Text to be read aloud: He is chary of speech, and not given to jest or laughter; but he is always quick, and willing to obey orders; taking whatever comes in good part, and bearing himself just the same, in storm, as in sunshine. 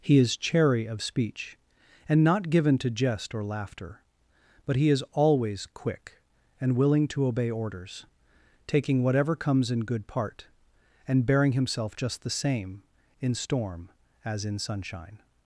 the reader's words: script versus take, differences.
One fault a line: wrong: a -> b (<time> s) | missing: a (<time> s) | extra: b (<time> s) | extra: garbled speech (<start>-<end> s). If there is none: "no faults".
no faults